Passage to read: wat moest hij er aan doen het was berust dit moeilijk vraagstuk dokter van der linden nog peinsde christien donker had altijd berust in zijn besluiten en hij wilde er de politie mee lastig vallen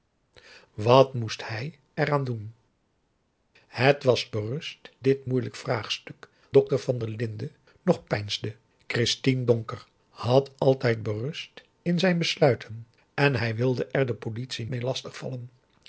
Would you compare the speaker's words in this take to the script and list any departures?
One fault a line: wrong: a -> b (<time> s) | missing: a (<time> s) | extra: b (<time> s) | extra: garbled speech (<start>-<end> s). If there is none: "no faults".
no faults